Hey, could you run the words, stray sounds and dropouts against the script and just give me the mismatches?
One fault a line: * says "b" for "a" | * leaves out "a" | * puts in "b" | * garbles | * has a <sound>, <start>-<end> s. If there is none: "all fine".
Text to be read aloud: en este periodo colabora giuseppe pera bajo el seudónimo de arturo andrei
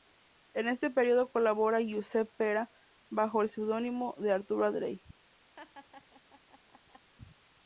* has a laugh, 5.6-7.1 s